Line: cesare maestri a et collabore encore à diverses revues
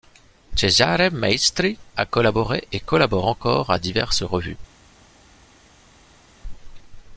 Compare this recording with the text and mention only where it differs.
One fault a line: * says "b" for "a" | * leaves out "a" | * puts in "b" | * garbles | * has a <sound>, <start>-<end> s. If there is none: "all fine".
* puts in "collaboré"